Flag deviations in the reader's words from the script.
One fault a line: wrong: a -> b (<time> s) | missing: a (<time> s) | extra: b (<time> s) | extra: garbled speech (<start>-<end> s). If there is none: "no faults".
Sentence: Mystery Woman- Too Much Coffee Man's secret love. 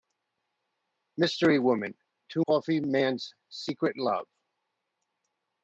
missing: Much (2.4 s)